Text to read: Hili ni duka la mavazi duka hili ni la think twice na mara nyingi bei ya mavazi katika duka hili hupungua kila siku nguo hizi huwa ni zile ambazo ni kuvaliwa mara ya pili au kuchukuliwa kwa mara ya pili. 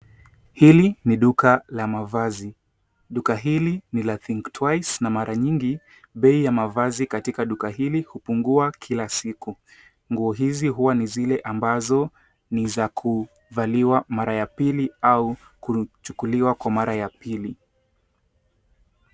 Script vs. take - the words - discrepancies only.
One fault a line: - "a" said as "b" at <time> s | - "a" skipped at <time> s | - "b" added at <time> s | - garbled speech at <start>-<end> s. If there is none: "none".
- "za" added at 12.7 s